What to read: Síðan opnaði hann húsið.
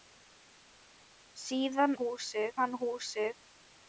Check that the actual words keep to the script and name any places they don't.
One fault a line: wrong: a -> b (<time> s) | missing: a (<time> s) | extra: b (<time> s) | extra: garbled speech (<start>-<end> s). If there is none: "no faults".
wrong: opnaði -> húsið (2.0 s)